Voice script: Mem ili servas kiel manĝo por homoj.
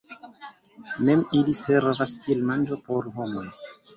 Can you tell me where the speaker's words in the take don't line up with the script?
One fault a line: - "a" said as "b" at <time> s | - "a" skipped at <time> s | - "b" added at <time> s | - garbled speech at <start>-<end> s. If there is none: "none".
none